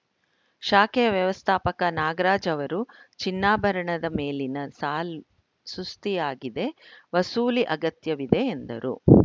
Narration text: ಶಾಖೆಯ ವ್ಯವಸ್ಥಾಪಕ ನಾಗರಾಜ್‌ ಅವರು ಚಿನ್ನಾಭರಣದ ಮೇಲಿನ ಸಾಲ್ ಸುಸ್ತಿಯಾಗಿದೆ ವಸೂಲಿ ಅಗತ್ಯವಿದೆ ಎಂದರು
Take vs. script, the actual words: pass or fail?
pass